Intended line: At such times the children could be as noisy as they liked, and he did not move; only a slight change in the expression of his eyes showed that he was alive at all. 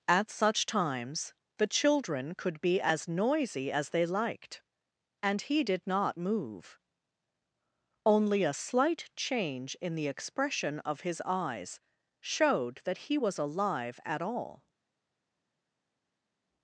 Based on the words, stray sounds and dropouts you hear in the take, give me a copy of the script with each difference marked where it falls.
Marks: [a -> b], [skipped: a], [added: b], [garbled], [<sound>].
At such times the children could be as noisy as they liked, and he did not move; only a slight change in the expression of his eyes showed that he was alive at all.